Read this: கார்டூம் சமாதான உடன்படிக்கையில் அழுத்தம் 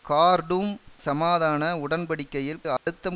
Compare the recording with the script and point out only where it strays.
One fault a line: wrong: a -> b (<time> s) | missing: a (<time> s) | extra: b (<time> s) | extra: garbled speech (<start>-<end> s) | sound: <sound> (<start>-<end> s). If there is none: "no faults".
sound: dropout (2.8-2.9 s)